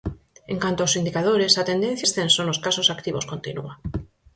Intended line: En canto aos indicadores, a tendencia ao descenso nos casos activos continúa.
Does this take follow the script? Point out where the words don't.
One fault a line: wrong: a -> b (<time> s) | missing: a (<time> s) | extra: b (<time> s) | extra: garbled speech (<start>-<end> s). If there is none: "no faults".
missing: ao (2.1 s)